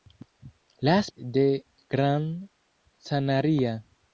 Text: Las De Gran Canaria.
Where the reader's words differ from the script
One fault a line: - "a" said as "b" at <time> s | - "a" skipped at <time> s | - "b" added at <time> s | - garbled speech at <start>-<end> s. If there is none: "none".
none